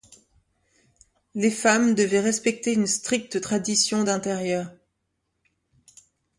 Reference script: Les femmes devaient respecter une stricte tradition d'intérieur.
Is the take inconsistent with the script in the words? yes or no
no